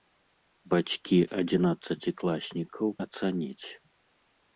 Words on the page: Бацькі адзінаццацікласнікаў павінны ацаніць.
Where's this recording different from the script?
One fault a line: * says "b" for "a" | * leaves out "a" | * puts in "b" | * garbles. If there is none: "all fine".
* leaves out "павінны"